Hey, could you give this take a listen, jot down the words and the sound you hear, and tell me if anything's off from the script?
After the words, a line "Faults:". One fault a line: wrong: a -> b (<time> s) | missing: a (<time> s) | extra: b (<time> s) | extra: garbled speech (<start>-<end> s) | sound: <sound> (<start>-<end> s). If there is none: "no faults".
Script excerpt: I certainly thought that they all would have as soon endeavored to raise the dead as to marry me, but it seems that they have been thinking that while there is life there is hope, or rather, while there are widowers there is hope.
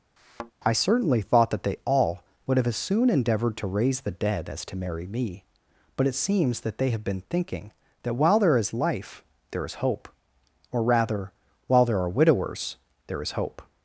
I certainly thought that they all would have as soon endeavored to raise the dead as to marry me, but it seems that they have been thinking that while there is life there is hope, or rather, while there are widowers there is hope.
Faults:
sound: thud (0.2-0.5 s)